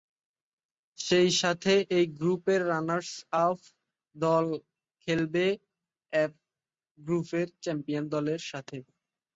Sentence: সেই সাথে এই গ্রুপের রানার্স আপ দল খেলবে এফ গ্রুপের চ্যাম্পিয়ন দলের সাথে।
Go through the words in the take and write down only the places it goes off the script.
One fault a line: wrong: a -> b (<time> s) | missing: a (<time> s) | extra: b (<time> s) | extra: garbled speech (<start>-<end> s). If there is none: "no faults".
no faults